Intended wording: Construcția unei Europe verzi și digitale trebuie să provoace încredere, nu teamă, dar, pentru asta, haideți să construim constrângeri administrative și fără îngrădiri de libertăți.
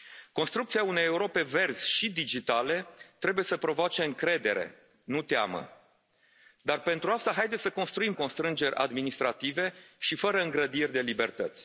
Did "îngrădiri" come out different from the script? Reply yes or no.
no